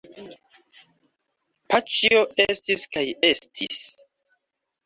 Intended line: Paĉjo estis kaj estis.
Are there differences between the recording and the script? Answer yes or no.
no